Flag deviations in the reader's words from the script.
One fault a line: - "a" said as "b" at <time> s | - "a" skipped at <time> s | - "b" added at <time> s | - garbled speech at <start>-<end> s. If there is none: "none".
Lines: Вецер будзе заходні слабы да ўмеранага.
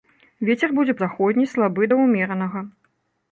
none